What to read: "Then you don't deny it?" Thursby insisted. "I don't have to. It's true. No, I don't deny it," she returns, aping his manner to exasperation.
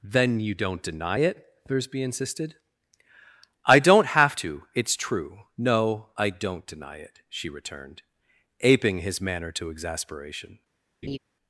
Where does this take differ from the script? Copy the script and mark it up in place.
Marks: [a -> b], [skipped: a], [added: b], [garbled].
"Then you don't deny it?" Thursby insisted. "I don't have to. It's true. No, I don't deny it," she [returns, -> returned] aping his manner to exasperation.